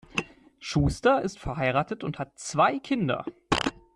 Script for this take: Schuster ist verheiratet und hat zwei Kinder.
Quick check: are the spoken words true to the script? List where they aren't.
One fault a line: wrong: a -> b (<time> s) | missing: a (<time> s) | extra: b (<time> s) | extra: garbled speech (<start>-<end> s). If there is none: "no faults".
no faults